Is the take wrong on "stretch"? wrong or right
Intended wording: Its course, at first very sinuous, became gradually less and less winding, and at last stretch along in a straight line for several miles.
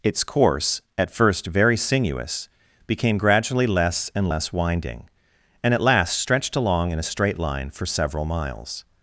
wrong